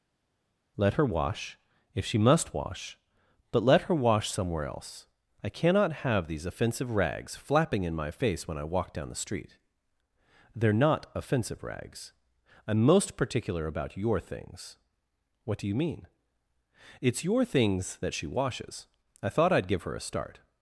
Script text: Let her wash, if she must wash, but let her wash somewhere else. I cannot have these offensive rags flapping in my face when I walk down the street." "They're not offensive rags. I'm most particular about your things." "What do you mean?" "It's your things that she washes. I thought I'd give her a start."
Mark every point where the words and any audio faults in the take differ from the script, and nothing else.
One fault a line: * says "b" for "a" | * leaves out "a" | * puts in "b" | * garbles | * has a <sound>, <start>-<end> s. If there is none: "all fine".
all fine